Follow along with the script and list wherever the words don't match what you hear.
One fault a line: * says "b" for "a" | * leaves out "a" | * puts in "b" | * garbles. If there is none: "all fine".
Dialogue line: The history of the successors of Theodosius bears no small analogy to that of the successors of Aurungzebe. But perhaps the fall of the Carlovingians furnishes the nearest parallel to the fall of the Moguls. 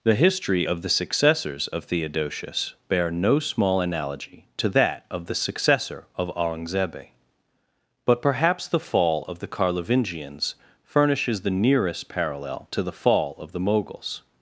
* says "bear" for "bears"
* says "successor" for "successors"